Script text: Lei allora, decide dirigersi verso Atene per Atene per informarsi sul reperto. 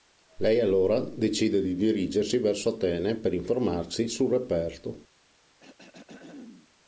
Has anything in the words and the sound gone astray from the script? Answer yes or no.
yes